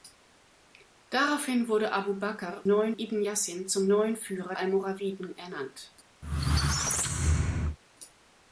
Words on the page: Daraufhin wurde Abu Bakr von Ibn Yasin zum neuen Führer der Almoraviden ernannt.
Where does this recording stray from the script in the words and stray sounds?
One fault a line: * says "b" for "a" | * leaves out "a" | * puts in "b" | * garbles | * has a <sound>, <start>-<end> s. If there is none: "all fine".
* says "neuen" for "von"
* leaves out "der"
* has a squeak, 6.2-7.8 s